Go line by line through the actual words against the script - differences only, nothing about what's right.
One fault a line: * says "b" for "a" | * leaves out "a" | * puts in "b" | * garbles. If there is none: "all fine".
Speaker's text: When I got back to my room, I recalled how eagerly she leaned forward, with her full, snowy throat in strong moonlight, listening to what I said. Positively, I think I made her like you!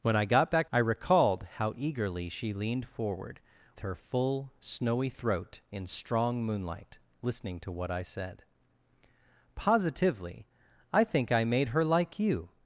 * leaves out "to my room"
* leaves out "with"